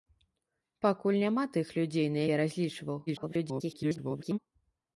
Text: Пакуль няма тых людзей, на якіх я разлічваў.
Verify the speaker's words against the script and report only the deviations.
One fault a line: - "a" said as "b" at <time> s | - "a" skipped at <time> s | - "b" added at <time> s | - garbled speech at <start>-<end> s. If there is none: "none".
- "якіх" skipped at 2.2 s
- garbled speech at 3.1-4.4 s